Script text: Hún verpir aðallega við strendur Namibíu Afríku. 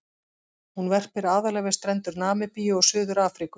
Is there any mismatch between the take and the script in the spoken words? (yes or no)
yes